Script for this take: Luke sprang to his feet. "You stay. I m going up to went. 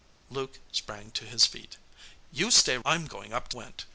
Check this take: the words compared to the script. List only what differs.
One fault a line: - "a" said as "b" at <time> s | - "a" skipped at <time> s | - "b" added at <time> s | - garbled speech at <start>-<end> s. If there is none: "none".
none